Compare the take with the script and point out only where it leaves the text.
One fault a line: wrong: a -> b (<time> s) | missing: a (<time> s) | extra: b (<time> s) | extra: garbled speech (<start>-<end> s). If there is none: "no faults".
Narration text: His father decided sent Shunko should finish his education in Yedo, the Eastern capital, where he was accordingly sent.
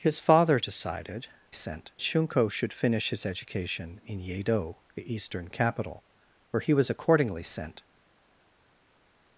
no faults